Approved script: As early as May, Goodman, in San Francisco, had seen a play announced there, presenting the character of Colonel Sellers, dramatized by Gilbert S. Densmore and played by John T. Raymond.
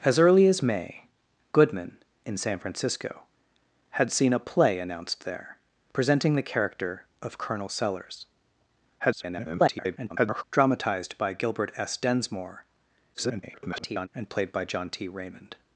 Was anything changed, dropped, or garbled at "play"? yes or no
no